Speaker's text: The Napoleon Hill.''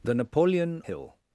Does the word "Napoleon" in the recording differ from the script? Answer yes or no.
no